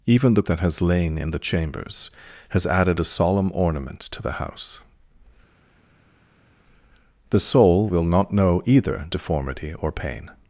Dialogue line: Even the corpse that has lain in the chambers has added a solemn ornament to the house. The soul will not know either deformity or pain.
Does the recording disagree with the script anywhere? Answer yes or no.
yes